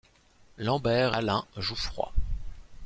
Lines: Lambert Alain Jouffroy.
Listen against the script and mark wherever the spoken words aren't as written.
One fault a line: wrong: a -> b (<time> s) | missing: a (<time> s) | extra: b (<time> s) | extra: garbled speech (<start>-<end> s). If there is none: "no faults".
no faults